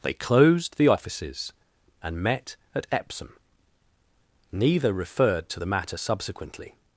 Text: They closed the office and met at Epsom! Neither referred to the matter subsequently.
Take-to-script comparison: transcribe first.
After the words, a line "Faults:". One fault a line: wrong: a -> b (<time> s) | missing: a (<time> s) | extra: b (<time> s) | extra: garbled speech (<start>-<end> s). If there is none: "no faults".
They closed the offices and met at Epsom! Neither referred to the matter subsequently.
Faults:
wrong: office -> offices (0.9 s)